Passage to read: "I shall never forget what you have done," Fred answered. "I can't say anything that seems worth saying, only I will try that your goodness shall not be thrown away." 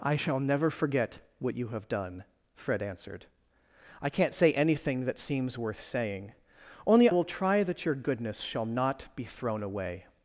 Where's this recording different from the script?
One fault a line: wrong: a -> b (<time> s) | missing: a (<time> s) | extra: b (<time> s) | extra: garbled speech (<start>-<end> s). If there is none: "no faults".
missing: I (7.1 s)